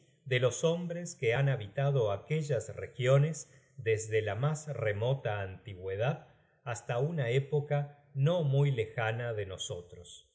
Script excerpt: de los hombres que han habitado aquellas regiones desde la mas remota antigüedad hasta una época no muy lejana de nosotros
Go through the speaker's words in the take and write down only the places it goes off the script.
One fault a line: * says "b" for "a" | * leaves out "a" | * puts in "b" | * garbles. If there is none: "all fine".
all fine